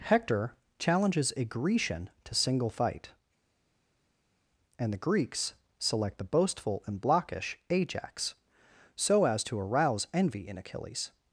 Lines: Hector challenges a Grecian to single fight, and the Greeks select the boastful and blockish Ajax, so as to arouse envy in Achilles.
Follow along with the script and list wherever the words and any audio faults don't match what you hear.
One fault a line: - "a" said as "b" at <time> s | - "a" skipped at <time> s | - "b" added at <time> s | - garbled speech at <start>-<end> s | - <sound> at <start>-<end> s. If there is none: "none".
none